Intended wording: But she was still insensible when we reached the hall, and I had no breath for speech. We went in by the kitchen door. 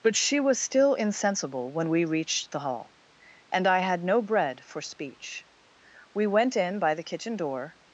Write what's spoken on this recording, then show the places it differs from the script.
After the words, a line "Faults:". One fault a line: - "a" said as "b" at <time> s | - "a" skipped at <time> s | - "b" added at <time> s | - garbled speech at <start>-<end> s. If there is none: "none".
But she was still insensible when we reached the hall, and I had no bread for speech. We went in by the kitchen door.
Faults:
- "breath" said as "bread" at 4.2 s